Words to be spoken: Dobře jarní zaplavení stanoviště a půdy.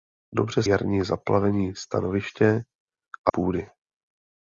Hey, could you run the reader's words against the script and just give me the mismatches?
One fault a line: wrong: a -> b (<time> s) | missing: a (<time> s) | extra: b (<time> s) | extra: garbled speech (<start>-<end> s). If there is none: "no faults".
no faults